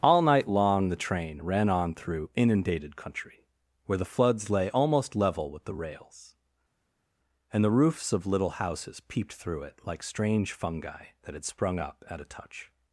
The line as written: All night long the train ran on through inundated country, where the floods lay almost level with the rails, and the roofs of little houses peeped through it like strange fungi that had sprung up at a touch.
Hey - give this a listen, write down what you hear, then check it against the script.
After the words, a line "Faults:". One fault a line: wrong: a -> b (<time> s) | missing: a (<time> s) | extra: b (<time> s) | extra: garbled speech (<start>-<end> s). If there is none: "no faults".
All night long the train ran on through inundated country, where the floods lay almost level with the rails, and the roofs of little houses peeped through it like strange fungi that had sprung up at a touch.
Faults:
no faults